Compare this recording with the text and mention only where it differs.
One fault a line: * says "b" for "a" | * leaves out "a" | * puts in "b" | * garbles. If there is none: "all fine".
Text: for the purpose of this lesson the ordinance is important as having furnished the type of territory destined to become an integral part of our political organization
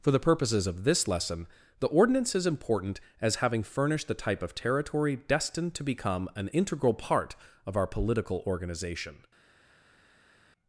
* says "purposes" for "purpose"